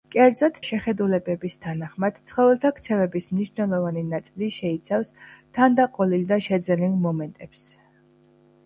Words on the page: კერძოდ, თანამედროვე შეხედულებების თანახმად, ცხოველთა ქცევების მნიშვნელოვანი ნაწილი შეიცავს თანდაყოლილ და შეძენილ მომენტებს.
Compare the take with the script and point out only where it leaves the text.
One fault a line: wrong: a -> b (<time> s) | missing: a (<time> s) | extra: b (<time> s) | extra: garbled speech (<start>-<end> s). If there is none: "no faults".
missing: თანამედროვე (0.6 s)